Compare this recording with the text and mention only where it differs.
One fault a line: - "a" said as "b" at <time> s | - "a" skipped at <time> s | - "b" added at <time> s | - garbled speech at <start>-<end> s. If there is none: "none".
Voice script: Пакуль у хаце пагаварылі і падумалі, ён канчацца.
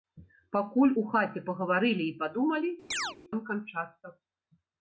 none